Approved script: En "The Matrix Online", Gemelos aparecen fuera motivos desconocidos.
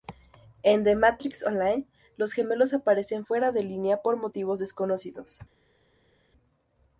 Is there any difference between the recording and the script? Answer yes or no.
yes